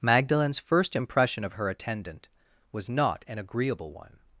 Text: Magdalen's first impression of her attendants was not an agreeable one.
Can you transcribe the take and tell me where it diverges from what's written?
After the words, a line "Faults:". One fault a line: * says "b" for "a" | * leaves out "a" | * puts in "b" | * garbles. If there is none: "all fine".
Magdalen's first impression of her attendant was not an agreeable one.
Faults:
* says "attendant" for "attendants"